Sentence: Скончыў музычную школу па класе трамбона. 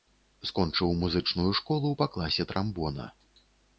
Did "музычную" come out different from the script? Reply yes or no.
no